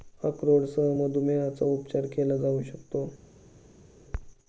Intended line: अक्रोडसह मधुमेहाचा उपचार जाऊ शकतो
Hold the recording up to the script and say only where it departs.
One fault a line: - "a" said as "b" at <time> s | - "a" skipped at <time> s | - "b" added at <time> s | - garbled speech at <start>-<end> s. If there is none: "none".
- "केला" added at 2.1 s